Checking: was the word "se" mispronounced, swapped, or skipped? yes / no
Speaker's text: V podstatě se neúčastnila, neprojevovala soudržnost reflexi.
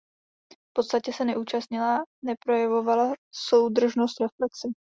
no